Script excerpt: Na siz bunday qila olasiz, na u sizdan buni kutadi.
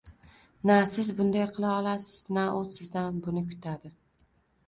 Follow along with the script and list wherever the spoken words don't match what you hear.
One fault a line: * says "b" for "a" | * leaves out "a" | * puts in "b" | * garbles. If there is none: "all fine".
all fine